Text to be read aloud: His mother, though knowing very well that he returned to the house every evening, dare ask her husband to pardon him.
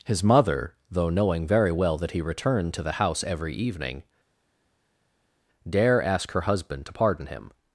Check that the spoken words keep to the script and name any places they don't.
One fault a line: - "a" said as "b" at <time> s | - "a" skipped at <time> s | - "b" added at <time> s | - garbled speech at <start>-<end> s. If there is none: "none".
none